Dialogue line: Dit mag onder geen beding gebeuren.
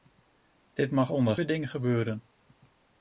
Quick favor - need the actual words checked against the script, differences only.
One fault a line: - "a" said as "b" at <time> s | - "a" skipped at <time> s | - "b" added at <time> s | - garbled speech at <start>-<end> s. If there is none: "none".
- "geen" skipped at 1.4 s